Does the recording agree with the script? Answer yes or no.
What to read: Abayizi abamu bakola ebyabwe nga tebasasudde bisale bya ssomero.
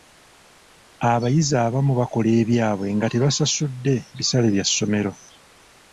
yes